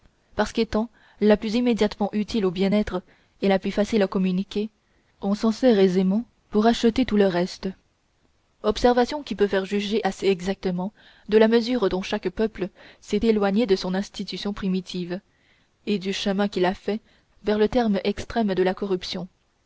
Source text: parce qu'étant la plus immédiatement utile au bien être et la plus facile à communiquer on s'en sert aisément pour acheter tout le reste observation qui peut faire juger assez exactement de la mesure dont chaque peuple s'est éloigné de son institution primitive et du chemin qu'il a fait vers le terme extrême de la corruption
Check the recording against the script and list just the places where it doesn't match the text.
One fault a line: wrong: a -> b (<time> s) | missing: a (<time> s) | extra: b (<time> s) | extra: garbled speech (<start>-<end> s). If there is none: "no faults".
no faults